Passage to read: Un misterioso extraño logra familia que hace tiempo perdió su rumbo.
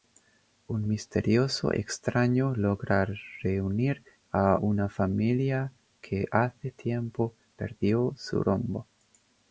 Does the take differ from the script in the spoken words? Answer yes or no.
yes